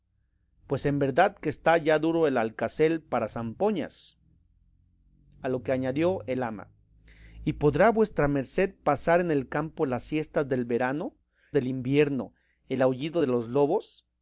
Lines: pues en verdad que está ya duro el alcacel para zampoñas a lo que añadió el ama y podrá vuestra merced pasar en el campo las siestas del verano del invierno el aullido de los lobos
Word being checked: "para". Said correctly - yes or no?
yes